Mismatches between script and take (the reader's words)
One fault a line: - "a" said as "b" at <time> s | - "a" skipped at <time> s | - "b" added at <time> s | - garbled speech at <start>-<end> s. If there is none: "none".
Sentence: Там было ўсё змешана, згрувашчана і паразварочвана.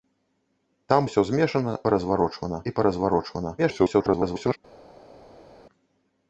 - "было" skipped at 1.0 s
- "згрувашчана" said as "паразварочвана" at 1.9 s
- garbled speech at 3.6-4.6 s